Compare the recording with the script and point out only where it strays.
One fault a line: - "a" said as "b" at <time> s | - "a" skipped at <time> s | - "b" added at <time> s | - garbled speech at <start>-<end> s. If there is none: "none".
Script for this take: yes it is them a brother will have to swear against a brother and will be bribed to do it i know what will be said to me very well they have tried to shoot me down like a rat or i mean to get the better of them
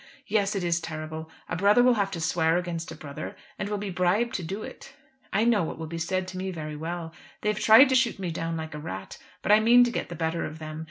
- "them" said as "terrible" at 0.8 s
- "or" said as "but" at 9.4 s